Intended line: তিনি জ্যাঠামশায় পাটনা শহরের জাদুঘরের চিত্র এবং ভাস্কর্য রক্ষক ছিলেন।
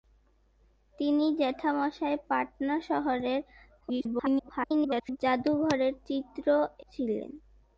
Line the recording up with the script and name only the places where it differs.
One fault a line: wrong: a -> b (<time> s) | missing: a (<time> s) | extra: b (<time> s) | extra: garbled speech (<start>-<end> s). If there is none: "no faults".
extra: garbled speech (3.8-5.2 s)
missing: এবং ভাস্কর্য রক্ষক (6.5 s)